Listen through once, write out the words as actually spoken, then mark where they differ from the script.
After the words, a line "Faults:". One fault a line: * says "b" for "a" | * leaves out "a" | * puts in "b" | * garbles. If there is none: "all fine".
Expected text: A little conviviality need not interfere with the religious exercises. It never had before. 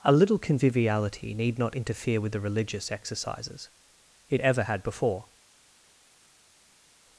A little conviviality need not interfere with the religious exercises. It ever had before.
Faults:
* says "ever" for "never"